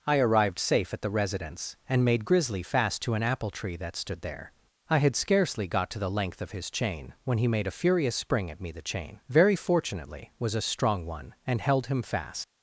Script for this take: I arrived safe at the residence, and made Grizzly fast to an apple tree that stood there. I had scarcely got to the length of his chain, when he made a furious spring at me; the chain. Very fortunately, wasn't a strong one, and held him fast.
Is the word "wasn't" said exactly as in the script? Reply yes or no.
no